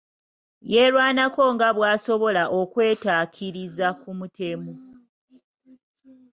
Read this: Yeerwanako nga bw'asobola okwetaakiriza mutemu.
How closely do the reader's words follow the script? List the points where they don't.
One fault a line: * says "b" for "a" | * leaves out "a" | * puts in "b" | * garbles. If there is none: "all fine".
* puts in "ku"